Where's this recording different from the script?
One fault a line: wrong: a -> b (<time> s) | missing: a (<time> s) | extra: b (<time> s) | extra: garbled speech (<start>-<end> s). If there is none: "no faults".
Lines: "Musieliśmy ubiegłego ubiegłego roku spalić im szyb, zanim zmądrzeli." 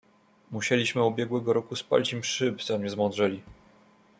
missing: ubiegłego (1.5 s)